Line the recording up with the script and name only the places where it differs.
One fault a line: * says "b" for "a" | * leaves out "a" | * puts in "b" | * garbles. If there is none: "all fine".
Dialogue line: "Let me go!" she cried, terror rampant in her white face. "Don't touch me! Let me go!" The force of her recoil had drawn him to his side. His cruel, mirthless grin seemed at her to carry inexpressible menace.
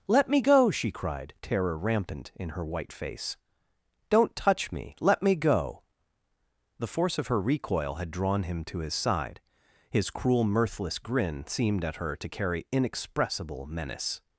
all fine